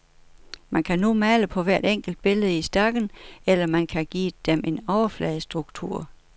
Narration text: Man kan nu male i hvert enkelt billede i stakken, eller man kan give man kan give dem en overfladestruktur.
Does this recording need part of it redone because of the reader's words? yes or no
yes